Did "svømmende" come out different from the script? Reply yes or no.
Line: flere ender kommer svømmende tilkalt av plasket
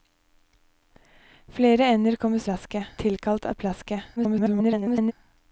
yes